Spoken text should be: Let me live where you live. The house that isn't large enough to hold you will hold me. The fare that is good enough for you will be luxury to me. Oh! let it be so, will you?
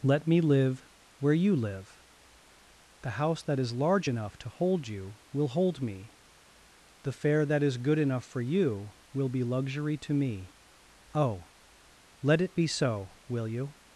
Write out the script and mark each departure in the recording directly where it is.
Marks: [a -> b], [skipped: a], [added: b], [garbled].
Let me live where you live. The house that [isn't -> is] large enough to hold you will hold me. The fare that is good enough for you will be luxury to me. Oh! let it be so, will you?